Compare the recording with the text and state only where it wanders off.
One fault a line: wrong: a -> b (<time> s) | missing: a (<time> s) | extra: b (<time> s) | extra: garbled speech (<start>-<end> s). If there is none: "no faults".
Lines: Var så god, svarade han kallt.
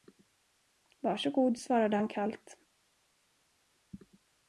no faults